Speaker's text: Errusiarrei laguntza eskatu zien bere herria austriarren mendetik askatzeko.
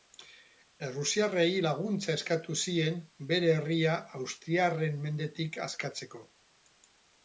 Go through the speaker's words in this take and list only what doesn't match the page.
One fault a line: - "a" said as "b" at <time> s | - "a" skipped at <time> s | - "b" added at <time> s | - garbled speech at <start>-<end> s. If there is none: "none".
none